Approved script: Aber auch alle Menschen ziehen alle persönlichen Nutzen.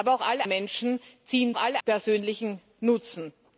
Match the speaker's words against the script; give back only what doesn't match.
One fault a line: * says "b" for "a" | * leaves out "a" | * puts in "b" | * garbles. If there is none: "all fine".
all fine